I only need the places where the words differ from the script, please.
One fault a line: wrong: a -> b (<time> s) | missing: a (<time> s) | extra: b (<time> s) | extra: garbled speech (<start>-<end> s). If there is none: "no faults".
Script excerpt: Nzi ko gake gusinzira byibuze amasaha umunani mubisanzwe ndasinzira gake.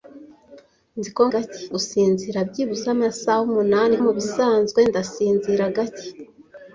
no faults